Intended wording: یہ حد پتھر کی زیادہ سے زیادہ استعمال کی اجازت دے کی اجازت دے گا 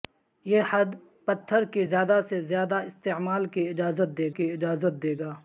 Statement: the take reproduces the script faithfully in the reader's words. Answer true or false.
true